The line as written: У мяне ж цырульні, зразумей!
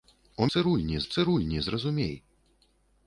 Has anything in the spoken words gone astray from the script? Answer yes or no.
yes